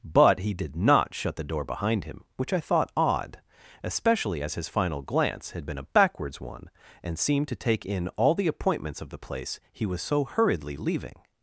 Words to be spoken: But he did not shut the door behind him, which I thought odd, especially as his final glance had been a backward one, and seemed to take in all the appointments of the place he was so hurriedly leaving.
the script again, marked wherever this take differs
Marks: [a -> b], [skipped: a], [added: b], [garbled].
But he did not shut the door behind him, which I thought odd, especially as his final glance had been a [backward -> backwards] one, and seemed to take in all the appointments of the place he was so hurriedly leaving.